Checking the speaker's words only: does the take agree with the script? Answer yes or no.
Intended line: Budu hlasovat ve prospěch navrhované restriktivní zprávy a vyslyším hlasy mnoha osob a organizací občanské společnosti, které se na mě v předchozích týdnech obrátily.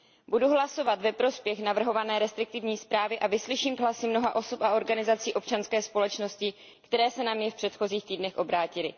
yes